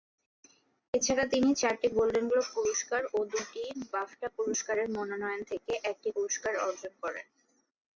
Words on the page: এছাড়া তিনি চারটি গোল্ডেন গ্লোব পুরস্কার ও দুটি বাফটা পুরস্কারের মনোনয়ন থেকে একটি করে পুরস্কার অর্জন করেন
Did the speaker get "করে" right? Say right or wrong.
wrong